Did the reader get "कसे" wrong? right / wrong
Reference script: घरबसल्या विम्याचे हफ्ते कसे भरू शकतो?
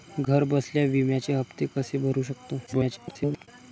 right